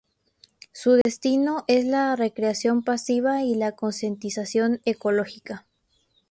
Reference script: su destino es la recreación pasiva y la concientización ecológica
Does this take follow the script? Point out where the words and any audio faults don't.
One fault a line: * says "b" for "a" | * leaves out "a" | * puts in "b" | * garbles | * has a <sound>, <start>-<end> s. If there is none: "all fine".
* has a dropout, 1.0-1.1 s